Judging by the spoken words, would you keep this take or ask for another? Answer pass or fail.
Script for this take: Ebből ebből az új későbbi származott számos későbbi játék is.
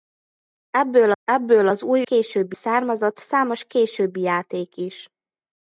pass